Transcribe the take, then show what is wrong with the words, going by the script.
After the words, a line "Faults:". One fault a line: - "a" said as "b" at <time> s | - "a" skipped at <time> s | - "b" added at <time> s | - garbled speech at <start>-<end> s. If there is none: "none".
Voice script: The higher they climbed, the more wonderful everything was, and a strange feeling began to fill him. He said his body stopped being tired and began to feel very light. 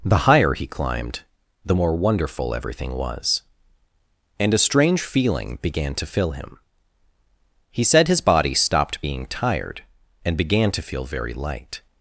The higher he climbed, the more wonderful everything was, and a strange feeling began to fill him. He said his body stopped being tired and began to feel very light.
Faults:
- "they" said as "he" at 0.5 s